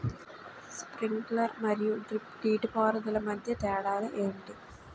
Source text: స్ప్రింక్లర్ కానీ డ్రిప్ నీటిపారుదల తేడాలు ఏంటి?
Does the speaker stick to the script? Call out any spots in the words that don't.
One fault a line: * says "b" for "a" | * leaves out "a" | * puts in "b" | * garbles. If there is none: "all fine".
* says "మరియు" for "కానీ"
* puts in "మధ్య"